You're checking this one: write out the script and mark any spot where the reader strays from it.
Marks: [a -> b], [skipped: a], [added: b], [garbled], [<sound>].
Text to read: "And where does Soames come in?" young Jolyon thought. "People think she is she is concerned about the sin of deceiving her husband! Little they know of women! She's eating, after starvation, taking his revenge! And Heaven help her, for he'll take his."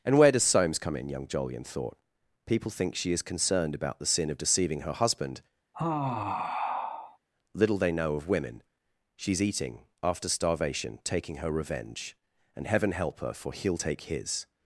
"And where does Soames come in?" young Jolyon thought. "People think she is [skipped: she is] concerned about the sin of deceiving her husband! [sigh] Little they know of women! She's eating, after starvation, taking [his -> her] revenge! And Heaven help her, for he'll take his."